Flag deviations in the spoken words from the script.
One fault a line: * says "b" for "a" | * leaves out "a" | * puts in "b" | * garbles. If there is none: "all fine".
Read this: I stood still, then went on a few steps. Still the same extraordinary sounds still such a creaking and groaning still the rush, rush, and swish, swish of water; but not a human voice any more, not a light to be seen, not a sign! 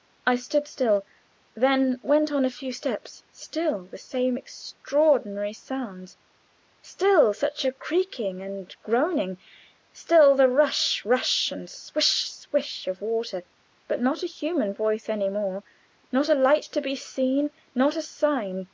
all fine